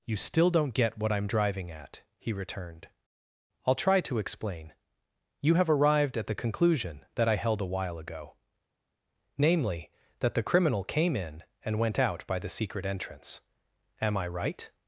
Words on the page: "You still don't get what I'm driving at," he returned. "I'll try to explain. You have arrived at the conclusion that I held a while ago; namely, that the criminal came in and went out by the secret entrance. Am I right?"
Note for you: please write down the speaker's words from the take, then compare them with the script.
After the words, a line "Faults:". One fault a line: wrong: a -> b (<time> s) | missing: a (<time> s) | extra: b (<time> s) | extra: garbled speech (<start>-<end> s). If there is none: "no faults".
"You still don't get what I'm driving at," he returned. "I'll try to explain. You have arrived at the conclusion that I held a while ago; namely, that the criminal came in and went out by the secret entrance. Am I right?"
Faults:
no faults